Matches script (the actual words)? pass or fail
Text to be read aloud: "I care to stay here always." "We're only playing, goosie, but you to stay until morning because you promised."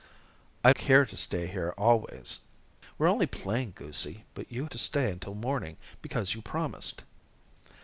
pass